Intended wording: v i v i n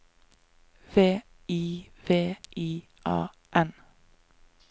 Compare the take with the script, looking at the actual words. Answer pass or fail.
fail